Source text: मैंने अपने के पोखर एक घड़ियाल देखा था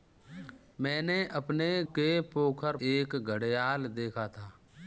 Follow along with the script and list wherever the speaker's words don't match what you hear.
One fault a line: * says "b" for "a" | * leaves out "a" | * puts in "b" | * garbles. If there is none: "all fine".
all fine